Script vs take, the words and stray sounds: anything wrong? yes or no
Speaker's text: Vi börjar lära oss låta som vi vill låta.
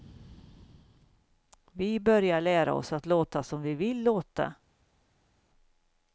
yes